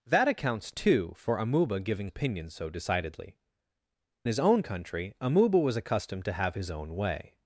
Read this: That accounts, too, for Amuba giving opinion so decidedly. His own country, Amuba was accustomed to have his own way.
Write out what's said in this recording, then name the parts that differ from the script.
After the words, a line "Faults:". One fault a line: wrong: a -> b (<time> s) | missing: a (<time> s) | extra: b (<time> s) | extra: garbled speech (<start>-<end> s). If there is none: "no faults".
That accounts, too, for Amuba giving opinion so decidedly. His own country, Amuba was accustomed to have his own way.
Faults:
no faults